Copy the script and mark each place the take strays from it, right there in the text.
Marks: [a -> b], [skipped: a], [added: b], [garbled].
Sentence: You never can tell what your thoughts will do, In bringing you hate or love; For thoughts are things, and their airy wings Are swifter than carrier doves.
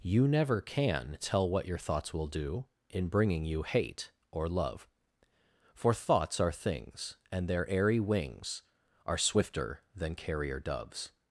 You never can tell what your thoughts will do, In bringing you hate or love; For thoughts are things, and their airy wings Are swifter than carrier doves.